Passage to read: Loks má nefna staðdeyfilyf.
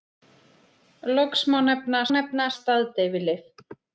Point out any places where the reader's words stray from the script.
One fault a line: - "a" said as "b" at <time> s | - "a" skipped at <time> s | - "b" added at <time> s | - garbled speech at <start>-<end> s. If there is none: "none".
- "nefna" added at 2.1 s